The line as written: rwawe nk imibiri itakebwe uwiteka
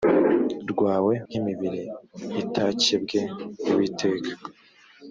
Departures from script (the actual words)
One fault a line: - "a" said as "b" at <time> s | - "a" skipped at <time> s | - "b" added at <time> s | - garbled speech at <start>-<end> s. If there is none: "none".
none